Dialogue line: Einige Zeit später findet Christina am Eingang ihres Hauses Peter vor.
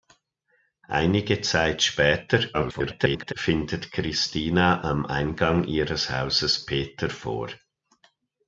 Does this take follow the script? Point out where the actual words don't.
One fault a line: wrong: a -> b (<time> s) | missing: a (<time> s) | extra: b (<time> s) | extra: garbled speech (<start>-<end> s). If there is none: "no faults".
extra: garbled speech (2.5-3.3 s)